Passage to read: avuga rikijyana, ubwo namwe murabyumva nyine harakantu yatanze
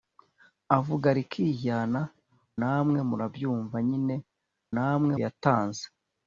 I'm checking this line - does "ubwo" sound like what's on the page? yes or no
no